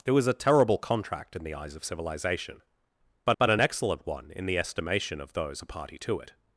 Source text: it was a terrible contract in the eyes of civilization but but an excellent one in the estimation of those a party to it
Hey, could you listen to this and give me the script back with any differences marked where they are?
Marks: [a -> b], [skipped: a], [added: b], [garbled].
it was a terrible contract in the eyes of civilization but but an excellent one in the estimation of those a party to it